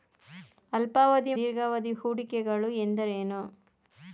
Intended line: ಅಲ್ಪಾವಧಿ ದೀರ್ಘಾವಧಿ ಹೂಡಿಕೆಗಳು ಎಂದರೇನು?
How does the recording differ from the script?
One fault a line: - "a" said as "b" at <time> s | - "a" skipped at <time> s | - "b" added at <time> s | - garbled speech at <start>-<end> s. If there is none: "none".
none